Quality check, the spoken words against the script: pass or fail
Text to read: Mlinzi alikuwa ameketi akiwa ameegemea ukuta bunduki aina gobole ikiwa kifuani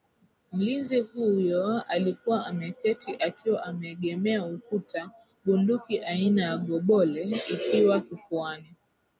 fail